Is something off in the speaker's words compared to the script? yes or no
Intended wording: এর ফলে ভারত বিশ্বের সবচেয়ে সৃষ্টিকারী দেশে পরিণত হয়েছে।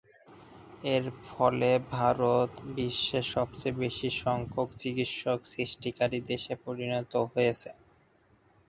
yes